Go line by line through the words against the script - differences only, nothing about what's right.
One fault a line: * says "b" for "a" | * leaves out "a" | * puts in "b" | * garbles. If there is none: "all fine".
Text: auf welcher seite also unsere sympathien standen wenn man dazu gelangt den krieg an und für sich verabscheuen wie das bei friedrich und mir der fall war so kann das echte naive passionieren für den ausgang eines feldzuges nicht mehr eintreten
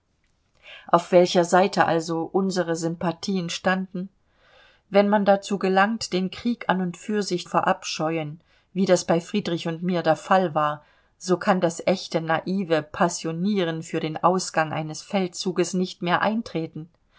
all fine